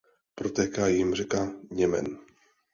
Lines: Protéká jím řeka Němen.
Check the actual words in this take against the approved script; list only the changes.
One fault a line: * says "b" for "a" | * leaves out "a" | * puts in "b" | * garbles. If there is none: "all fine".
all fine